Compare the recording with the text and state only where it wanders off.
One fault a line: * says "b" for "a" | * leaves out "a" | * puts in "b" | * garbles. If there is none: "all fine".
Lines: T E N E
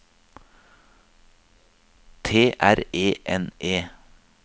* puts in "R"